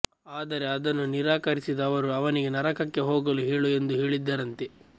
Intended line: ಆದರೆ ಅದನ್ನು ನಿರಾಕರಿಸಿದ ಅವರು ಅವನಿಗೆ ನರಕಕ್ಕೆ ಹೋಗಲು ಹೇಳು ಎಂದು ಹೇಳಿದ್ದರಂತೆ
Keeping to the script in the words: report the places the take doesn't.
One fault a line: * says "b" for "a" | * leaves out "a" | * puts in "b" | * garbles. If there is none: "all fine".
all fine